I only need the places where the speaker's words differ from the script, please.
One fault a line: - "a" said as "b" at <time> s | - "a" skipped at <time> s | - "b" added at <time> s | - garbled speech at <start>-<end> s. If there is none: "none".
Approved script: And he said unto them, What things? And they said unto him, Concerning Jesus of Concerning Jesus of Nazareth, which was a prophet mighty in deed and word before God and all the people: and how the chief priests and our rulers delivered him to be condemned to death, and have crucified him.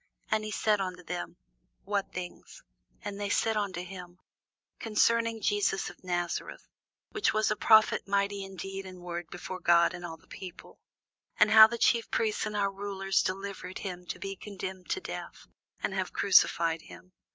- "Concerning Jesus of" skipped at 6.0 s